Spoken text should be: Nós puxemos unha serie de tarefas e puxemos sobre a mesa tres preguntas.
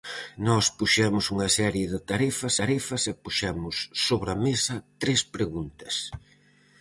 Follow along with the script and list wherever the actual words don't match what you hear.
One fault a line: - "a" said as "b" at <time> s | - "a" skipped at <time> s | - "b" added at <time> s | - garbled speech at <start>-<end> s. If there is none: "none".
- "tarefas" added at 2.6 s